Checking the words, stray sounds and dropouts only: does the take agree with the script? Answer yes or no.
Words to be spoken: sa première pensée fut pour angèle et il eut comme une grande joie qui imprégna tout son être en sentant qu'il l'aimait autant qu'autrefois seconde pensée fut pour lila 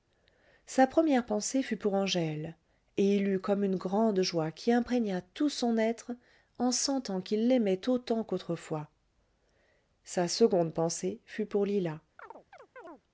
no